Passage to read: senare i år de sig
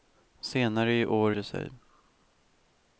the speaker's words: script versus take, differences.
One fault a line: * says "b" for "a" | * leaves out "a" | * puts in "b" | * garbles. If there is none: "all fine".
all fine